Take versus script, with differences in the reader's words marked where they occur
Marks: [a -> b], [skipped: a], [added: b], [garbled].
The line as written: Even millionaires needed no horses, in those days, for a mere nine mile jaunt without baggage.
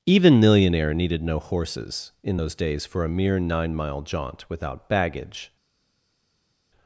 Even [millionaires -> millionaire] needed no horses, in those days, for a mere nine mile jaunt without baggage.